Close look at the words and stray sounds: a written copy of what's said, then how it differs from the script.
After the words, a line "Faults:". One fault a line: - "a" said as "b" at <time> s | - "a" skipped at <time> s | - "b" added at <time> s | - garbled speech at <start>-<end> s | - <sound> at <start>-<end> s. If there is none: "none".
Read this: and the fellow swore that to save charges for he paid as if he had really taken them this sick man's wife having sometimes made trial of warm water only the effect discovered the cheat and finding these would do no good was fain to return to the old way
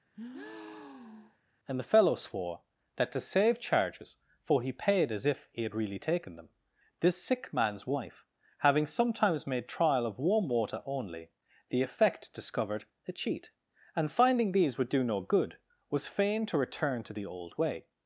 and the fellow swore that to save charges for he paid as if he had really taken them this sick man's wife having sometimes made trial of warm water only the effect discovered a cheat and finding these would do no good was fain to return to the old way
Faults:
- breath at 0.1-1.4 s
- "the" said as "a" at 13.1 s